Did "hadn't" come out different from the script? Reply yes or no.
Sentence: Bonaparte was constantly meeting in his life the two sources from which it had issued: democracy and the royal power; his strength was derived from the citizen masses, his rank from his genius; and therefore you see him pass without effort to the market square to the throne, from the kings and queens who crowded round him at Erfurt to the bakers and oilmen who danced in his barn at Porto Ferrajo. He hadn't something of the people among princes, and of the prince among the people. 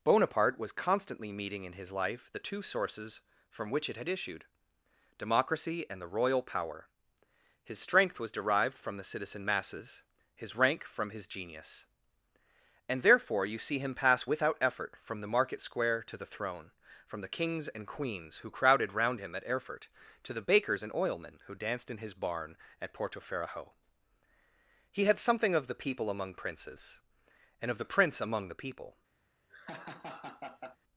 yes